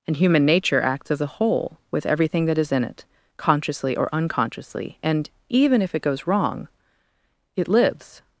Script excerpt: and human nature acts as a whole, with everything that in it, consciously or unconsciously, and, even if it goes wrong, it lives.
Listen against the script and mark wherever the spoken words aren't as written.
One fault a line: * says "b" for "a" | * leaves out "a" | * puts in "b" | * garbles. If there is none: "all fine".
* puts in "is"